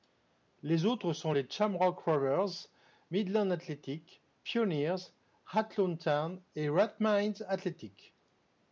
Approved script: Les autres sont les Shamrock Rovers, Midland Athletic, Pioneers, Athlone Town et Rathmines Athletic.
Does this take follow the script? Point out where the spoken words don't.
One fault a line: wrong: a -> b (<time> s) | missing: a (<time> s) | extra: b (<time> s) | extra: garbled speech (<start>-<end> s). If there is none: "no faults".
no faults